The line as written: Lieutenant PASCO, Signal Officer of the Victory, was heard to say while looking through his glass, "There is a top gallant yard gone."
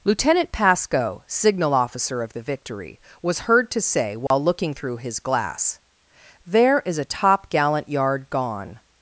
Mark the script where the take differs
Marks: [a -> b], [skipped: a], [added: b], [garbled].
Lieutenant PASCO, Signal Officer of the Victory, was heard to say while looking through his glass, "There is a top gallant yard gone."